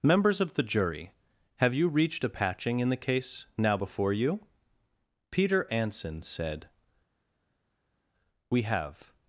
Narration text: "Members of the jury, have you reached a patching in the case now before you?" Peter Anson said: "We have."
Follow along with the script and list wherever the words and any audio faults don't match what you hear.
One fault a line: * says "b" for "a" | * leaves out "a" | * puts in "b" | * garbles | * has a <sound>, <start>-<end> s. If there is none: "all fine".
all fine